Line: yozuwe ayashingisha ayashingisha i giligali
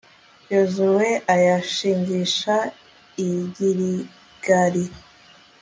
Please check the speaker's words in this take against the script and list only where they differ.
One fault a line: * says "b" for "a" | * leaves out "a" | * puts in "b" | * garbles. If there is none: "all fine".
* leaves out "ayashingisha"